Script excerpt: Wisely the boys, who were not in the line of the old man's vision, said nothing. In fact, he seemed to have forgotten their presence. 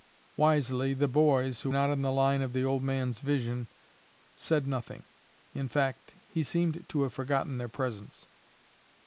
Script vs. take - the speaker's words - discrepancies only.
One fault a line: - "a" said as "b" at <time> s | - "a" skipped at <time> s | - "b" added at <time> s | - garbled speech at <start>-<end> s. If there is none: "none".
- "were" skipped at 1.7 s